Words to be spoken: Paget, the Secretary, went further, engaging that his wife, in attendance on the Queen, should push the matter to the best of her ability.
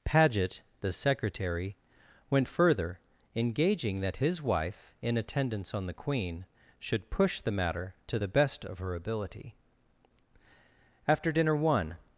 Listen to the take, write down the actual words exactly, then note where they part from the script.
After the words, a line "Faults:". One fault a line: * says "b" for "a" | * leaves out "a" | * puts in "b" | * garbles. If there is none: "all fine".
Paget, the Secretary, went further, engaging that his wife, in attendance on the Queen, should push the matter to the best of her ability. After dinner one
Faults:
* puts in "After dinner one"